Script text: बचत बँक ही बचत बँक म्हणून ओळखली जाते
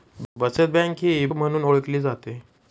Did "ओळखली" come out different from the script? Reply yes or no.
no